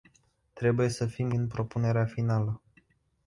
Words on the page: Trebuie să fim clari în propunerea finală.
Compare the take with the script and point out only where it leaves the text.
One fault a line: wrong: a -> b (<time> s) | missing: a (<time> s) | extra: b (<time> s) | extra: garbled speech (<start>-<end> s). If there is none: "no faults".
missing: clari (1.3 s)